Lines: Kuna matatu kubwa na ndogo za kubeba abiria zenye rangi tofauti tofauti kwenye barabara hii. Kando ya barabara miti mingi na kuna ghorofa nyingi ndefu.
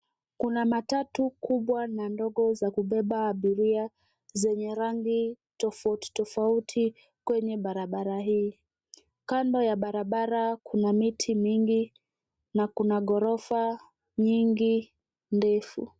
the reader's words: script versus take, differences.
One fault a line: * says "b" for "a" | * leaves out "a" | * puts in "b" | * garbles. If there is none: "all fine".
* puts in "kuna"